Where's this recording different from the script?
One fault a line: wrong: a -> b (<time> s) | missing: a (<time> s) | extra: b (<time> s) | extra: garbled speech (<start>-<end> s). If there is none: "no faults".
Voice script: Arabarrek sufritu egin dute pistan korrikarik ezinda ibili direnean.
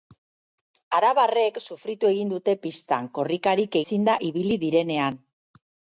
no faults